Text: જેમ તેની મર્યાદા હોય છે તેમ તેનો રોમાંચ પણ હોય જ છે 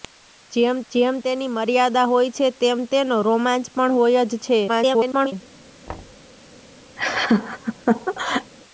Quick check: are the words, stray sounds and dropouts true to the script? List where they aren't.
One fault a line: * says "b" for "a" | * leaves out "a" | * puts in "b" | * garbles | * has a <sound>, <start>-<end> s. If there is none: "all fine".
* puts in "જેમ"
* garbles
* has a thud, 5.9-6.3 s
* has a laugh, 7.0-8.5 s